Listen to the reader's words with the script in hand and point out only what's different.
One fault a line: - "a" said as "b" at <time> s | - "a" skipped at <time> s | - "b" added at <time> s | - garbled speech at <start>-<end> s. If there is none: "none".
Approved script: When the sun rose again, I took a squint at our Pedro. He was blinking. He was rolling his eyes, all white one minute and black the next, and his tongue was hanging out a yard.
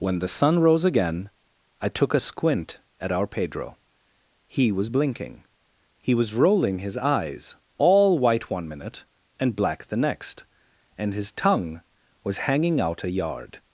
none